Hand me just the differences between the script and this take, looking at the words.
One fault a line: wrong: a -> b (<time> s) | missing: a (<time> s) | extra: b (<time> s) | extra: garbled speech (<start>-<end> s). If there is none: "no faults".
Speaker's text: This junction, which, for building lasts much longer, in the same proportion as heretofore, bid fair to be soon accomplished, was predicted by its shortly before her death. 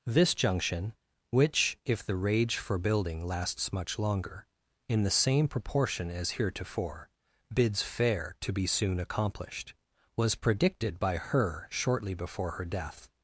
extra: if the rage (1.9 s)
wrong: bid -> bids (7.5 s)
wrong: its -> her (11.2 s)